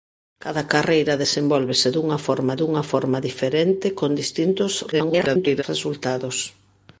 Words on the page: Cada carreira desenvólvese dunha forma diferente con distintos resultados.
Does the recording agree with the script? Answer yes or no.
no